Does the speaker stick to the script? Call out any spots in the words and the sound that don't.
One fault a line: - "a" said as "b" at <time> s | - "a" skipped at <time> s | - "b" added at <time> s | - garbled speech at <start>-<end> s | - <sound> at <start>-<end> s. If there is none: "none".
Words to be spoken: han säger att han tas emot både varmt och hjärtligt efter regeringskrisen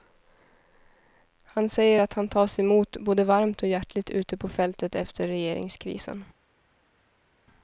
- "ute på fältet" added at 4.1 s